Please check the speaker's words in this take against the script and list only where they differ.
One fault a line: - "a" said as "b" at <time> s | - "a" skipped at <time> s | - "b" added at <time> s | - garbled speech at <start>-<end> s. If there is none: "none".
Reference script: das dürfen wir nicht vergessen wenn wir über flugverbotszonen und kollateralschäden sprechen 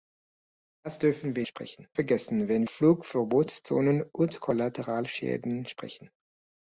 - "nicht" said as "sprechen" at 1.4 s
- "wir über" skipped at 2.6 s